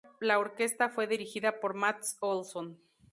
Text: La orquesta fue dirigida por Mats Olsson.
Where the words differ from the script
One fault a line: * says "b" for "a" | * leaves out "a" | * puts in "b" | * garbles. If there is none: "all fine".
all fine